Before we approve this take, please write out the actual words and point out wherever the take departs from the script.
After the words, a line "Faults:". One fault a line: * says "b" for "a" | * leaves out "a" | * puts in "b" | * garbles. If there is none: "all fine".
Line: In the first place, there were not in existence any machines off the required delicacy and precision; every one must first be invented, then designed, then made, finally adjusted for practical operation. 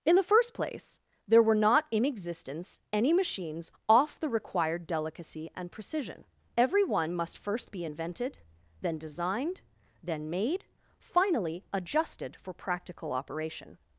In the first place, there were not in existence any machines off the required delicacy and precision; every one must first be invented, then designed, then made, finally adjusted for practical operation.
Faults:
all fine